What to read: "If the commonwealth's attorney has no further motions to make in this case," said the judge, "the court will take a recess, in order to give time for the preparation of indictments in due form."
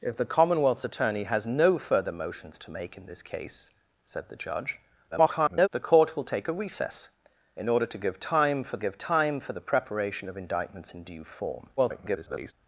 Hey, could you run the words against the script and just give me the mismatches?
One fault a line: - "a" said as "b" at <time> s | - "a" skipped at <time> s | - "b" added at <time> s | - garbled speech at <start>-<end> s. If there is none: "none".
- garbled speech at 5.1-5.7 s
- "give time for" added at 8.8 s
- garbled speech at 11.8-12.5 s